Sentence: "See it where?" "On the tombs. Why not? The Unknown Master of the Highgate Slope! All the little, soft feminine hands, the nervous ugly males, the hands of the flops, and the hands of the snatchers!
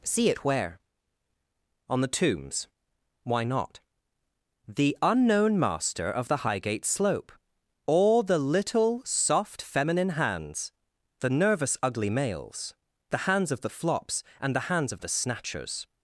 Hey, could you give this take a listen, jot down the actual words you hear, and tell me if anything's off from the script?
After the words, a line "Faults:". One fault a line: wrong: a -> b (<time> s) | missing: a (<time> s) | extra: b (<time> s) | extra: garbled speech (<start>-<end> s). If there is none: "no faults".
"See it where?" "On the tombs. Why not? The Unknown Master of the Highgate Slope! All the little, soft feminine hands, the nervous ugly males, the hands of the flops, and the hands of the snatchers!
Faults:
no faults